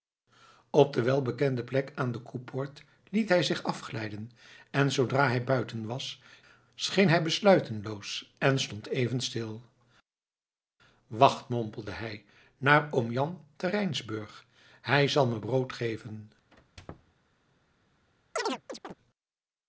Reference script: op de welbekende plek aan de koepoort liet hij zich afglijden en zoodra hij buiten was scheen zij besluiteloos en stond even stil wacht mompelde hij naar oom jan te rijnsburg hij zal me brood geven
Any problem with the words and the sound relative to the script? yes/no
yes